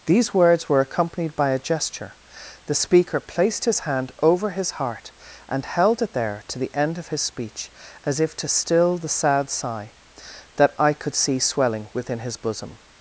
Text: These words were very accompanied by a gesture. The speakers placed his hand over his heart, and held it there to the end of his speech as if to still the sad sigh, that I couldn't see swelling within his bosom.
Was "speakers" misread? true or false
true